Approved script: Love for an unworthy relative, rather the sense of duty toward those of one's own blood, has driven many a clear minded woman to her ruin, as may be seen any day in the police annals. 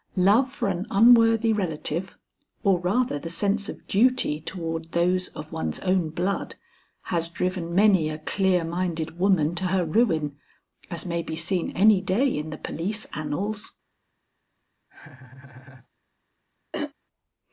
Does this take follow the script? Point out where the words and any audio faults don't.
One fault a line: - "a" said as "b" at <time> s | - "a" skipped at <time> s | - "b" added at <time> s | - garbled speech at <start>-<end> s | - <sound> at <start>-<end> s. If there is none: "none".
- "or" added at 2.6 s
- laugh at 14.9-15.9 s
- throat clearing at 16.7-16.9 s